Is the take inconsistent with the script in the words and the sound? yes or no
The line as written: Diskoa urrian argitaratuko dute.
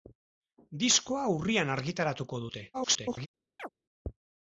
yes